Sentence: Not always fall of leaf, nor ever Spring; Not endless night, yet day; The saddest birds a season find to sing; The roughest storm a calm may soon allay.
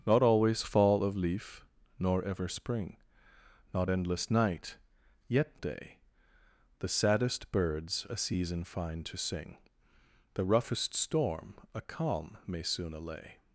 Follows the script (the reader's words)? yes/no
yes